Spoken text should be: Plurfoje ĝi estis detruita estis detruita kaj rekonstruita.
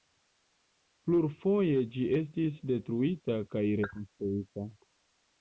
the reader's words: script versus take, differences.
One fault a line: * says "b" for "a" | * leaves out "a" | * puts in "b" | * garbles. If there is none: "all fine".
* leaves out "estis detruita"